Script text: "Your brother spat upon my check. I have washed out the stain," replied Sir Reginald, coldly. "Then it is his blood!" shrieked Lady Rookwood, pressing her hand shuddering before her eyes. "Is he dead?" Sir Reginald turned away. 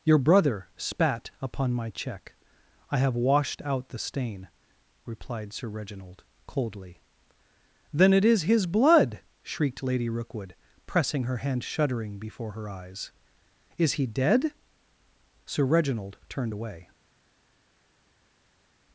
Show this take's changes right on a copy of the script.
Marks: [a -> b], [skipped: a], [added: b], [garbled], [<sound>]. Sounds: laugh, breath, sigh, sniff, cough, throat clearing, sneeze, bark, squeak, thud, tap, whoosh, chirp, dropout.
"Your brother spat upon my check. I have washed out the stain," replied Sir Reginald, coldly. "Then it is his blood!" shrieked Lady Rookwood, pressing her hand shuddering before her eyes. "Is he dead?" Sir Reginald turned away.